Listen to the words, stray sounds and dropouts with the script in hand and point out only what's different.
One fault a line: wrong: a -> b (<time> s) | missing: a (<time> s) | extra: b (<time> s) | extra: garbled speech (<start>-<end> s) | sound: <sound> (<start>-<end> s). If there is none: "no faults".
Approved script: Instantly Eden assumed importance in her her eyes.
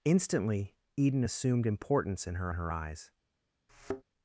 sound: thud (3.7-4.0 s)